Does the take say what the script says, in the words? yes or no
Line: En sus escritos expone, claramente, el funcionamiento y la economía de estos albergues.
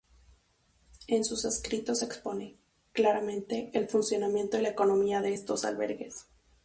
yes